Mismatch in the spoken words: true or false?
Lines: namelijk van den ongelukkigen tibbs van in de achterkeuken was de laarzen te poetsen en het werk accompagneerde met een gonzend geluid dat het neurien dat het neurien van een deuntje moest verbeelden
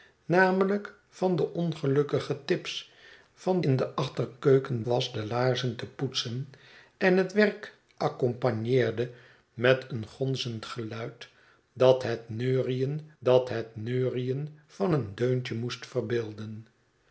false